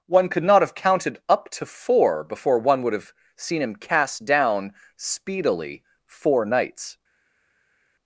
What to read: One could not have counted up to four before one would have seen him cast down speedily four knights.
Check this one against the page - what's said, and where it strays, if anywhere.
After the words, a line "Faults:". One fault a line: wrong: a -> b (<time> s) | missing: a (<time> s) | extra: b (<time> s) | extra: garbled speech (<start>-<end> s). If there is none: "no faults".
One could not have counted up to four before one would have seen him cast down speedily four knights.
Faults:
no faults